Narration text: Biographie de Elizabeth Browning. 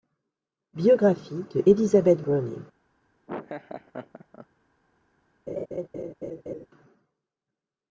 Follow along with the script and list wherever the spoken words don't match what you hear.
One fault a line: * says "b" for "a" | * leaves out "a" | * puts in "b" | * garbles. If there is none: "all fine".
all fine